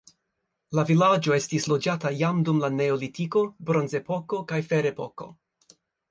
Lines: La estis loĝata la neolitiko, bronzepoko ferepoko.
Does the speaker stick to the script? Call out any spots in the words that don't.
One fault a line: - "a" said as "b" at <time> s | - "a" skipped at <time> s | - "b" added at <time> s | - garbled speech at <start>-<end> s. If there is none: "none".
- "vilaĝo" added at 0.9 s
- "jam dum" added at 2.2 s
- "kaj" added at 4.5 s